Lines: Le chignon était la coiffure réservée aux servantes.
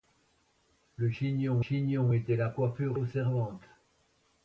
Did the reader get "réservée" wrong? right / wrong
wrong